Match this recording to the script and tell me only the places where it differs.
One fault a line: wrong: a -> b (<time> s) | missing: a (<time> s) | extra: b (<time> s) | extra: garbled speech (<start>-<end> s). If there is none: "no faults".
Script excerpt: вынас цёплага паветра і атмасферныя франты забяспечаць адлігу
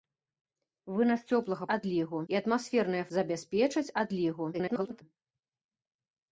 wrong: паветра -> адлігу (1.8 s)
missing: франты (3.0 s)
extra: garbled speech (4.5-5.0 s)